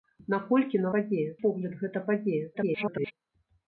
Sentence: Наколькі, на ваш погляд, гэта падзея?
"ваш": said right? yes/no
no